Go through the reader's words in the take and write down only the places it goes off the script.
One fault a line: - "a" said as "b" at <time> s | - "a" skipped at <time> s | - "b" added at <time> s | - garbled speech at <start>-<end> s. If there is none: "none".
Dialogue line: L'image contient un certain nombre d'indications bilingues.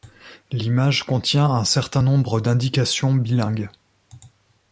none